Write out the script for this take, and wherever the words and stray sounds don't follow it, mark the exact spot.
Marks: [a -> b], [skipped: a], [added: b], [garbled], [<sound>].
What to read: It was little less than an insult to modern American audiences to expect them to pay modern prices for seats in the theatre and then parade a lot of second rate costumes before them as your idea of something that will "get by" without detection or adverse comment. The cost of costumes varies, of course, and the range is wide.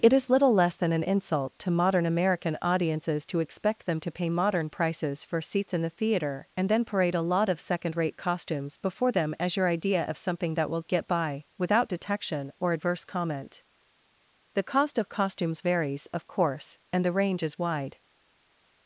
It [was -> is] little less than an insult to modern American audiences to expect them to pay modern prices for seats in the theatre and then parade a lot of second rate costumes before them as your idea of something that will "get by" without detection or adverse comment. The cost of costumes varies, of course, and the range is wide.